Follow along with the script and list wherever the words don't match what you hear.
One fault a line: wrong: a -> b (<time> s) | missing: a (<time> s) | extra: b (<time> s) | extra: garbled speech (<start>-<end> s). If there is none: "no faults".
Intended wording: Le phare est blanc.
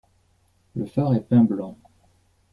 extra: peint (1.2 s)